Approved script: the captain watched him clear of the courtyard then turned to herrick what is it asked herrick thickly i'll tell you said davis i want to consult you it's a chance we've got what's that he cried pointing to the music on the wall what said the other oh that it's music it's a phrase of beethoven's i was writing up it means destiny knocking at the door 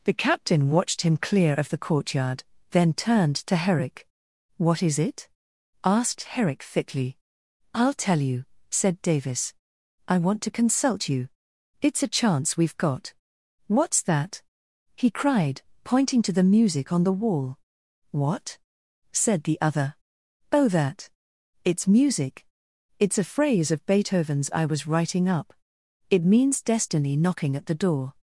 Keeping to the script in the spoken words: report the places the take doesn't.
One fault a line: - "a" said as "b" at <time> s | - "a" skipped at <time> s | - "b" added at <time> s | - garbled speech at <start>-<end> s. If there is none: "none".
none